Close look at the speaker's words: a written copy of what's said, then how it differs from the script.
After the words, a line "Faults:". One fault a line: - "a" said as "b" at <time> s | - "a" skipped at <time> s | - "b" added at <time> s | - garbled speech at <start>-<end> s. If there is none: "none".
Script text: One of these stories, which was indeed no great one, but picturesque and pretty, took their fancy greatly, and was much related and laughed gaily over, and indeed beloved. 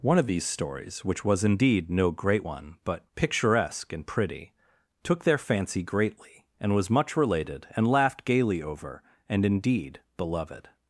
One of these stories, which was indeed no great one, but picturesque and pretty, took their fancy greatly, and was much related and laughed gaily over, and indeed beloved.
Faults:
none